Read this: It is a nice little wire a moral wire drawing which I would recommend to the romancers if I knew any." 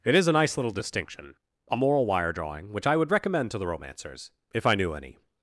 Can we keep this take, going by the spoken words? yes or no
no